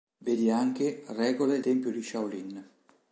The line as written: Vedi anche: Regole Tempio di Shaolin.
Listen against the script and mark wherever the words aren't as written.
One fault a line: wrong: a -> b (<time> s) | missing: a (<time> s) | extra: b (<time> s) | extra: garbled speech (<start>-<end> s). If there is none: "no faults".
no faults